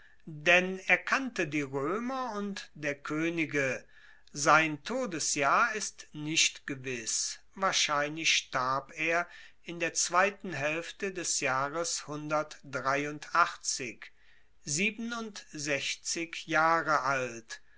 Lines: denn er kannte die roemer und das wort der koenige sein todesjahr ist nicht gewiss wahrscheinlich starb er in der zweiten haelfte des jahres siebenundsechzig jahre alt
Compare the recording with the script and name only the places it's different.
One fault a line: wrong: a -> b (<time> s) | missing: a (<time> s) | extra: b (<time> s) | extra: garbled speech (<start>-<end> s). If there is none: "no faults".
missing: das wort (2.7 s)